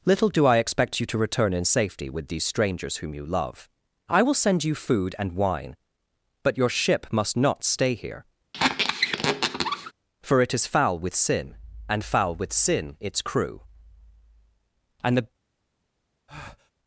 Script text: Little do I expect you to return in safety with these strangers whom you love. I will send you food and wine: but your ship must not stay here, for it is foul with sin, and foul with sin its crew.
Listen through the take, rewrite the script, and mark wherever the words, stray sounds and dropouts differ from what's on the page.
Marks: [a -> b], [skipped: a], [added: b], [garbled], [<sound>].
Little do I expect you to return in safety with these strangers whom you love. I will send you food and wine: but your ship must not stay here, [squeak] for it is foul with sin, and foul with sin its crew. [added: And the] [breath]